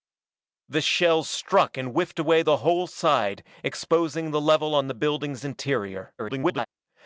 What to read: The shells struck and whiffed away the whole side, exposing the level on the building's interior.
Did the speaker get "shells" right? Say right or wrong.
right